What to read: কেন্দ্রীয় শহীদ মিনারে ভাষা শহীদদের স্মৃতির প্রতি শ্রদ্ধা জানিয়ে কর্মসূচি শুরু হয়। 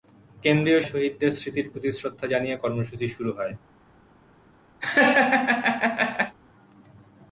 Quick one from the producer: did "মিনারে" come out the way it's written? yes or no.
no